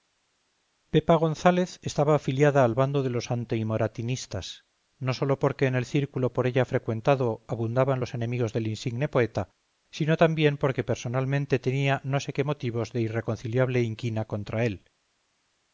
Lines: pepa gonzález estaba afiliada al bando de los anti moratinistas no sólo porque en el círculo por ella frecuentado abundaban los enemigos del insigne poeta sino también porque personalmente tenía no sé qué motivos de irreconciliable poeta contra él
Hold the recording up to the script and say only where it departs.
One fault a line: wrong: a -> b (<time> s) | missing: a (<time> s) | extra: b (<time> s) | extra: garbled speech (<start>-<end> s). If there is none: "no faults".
wrong: poeta -> inquina (13.8 s)